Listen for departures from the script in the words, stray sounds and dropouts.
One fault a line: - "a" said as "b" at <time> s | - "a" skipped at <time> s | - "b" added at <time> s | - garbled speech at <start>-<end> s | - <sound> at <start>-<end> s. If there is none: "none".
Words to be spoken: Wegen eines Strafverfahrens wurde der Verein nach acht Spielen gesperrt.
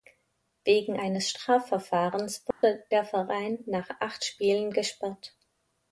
- dropout at 2.5-2.6 s